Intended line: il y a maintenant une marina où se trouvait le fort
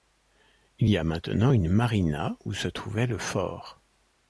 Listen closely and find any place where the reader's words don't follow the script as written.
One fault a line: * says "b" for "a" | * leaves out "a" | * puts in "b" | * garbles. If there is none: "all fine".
all fine